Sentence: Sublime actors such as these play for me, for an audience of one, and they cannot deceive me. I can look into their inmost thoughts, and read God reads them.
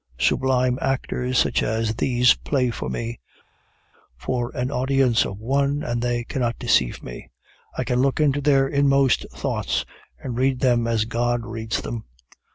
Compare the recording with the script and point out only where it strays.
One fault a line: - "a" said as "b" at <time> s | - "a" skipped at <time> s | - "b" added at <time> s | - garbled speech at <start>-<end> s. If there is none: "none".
- "them as" added at 10.6 s